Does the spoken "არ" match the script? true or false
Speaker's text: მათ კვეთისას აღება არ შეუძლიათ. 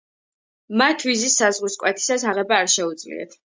true